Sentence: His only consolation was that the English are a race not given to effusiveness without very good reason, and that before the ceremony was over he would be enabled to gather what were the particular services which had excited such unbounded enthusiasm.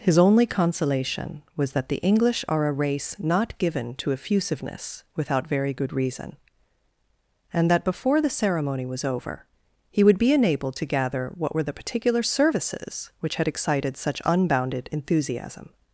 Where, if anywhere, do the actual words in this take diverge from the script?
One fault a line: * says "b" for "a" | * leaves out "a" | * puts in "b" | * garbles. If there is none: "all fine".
all fine